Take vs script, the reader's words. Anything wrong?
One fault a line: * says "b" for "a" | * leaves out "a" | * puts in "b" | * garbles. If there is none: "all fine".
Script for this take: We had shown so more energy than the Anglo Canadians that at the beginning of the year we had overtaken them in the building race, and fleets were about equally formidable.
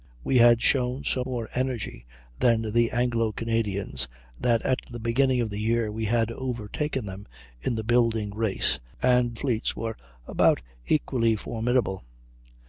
all fine